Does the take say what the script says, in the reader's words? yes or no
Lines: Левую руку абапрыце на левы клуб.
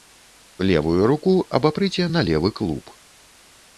yes